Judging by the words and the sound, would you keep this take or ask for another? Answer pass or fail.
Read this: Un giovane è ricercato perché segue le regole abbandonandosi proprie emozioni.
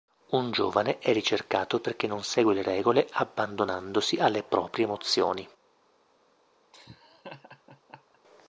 fail